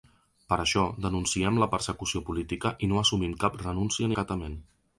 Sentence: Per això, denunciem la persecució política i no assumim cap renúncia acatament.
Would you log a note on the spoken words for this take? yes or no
no